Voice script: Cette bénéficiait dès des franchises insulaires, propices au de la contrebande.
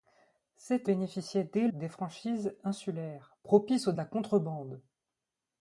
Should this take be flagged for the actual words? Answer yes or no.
no